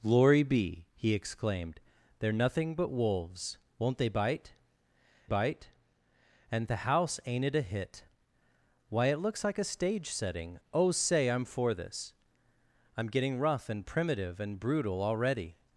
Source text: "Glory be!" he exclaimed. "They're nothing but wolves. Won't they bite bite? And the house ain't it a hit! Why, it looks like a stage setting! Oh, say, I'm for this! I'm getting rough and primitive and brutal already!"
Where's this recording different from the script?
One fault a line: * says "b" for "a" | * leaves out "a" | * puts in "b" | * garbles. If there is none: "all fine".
all fine